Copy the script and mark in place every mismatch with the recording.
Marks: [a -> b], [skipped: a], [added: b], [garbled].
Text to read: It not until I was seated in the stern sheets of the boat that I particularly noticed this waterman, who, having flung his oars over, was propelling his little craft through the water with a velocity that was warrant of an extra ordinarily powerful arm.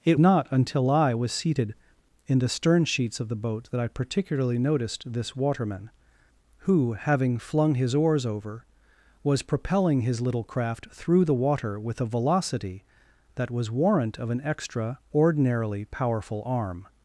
It not until I was seated in the stern sheets of the boat that I particularly noticed this waterman, who, having flung his oars over, was propelling his little craft through the water with a velocity that was warrant of an extra ordinarily powerful arm.